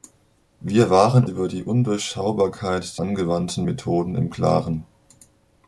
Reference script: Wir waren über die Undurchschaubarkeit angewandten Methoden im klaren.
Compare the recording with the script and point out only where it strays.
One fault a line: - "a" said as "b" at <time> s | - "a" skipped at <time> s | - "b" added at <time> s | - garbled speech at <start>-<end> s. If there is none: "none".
none